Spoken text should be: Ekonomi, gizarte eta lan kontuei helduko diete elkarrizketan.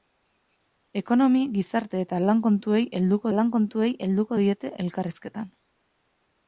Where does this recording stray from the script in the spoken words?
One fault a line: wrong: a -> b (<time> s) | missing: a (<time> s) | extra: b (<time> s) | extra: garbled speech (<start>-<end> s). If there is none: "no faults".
extra: lan kontuei helduko (3.3 s)